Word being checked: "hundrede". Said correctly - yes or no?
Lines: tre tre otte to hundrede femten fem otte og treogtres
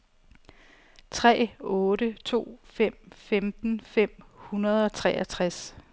no